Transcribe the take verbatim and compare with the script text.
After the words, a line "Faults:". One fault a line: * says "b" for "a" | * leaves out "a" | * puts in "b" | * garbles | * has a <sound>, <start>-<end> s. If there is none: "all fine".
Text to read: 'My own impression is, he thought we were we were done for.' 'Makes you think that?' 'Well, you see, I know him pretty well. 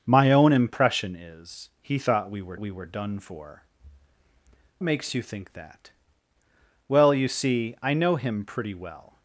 'My own impression is, he thought we were we were done for.' 'Makes you think that?' 'Well, you see, I know him pretty well.
Faults:
all fine